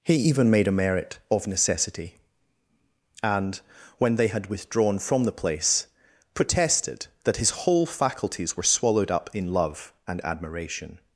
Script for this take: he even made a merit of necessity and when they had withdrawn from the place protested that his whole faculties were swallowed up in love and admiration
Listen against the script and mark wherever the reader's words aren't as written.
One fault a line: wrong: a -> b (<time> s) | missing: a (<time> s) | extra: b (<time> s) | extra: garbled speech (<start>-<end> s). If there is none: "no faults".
no faults